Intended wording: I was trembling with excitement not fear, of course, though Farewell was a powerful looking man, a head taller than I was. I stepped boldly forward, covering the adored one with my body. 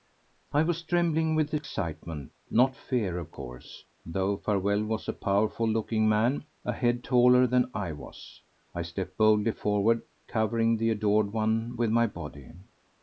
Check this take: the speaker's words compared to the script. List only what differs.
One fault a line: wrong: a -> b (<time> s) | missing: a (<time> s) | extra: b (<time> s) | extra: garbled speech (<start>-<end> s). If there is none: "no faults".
no faults